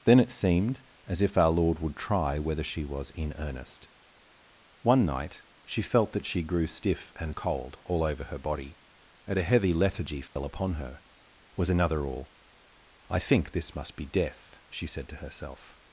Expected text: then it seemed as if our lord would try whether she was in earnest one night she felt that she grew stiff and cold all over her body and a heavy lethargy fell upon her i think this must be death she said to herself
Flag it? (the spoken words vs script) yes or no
yes